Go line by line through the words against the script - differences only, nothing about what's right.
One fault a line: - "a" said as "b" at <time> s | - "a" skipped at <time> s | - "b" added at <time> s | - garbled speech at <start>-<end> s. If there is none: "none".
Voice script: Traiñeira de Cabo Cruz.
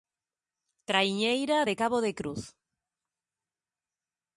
- "de" added at 2.0 s